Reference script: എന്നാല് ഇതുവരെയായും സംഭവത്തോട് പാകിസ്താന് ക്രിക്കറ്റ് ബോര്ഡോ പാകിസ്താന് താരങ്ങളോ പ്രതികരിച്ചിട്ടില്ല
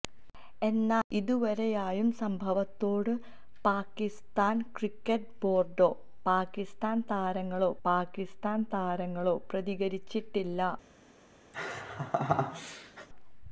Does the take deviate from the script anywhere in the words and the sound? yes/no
yes